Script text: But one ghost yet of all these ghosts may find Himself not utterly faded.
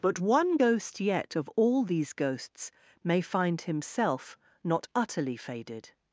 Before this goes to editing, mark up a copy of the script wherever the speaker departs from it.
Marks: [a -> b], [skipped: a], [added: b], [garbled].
But one ghost yet of all these ghosts may find Himself not utterly faded.